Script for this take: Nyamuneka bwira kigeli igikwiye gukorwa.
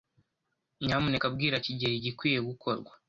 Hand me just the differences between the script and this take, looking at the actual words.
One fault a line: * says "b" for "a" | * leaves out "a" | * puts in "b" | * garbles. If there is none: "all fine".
all fine